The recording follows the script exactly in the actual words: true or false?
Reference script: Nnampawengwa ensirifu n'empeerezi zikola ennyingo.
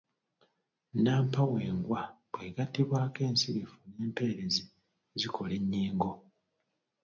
false